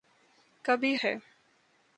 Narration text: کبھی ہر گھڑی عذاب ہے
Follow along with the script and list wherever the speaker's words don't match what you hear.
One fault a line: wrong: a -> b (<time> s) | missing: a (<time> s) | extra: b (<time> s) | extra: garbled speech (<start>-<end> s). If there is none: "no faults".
missing: ہر گھڑی عذاب (0.9 s)